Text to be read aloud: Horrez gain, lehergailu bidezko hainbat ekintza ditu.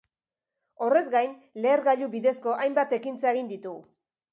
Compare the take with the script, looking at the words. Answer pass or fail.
fail